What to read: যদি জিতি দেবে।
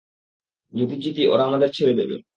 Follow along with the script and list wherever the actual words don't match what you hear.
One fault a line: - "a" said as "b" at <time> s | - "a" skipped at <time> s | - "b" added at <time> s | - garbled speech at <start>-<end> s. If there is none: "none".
- "ওরা আমাদের ছেড়ে" added at 1.3 s